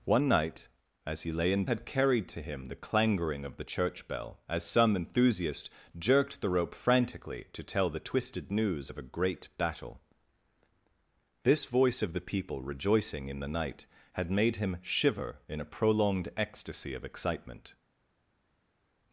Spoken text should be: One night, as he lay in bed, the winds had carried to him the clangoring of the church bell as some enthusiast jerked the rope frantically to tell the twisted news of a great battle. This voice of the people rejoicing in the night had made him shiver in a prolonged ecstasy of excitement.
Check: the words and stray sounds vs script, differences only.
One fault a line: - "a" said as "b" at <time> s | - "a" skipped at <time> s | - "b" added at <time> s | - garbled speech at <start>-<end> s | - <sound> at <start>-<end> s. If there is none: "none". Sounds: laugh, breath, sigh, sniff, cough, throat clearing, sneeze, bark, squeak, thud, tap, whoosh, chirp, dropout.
- "bed the winds" skipped at 1.6 s